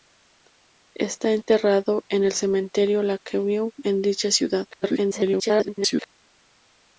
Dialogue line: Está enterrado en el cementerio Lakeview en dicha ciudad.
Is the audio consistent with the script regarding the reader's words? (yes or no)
no